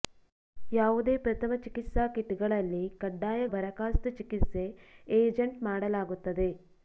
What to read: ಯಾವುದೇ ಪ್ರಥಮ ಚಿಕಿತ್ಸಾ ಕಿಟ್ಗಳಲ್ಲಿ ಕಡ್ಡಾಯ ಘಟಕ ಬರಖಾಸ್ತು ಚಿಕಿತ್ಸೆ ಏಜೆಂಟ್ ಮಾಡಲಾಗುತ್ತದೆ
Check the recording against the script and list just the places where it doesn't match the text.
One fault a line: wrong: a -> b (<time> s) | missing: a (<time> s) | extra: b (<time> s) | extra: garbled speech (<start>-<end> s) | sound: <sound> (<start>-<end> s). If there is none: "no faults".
missing: ಘಟಕ (3.4 s)